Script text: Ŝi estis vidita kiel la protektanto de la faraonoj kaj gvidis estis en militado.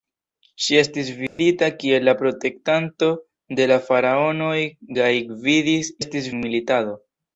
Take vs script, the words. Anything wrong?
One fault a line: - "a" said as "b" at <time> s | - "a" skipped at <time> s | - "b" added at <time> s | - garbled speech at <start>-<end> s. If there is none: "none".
none